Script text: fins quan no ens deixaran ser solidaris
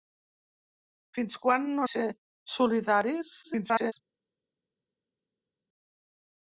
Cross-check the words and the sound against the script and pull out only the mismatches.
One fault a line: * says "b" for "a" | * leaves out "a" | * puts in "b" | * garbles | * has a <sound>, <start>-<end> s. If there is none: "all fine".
* leaves out "ens deixaran"
* garbles